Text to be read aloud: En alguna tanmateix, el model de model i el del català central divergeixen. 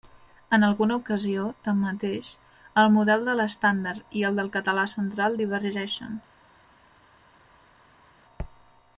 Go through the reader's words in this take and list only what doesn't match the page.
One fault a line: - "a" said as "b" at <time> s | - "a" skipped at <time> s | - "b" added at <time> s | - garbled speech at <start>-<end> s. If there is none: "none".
- "ocasió" added at 1.0 s
- "model" said as "l'estàndard" at 3.4 s